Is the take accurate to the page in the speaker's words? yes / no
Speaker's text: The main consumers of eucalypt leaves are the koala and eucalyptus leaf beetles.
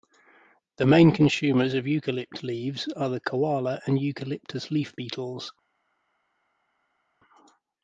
yes